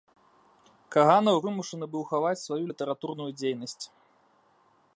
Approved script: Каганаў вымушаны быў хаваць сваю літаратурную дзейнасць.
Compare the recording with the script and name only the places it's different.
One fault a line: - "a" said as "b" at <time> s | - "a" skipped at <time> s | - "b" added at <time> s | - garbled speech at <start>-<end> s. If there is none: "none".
none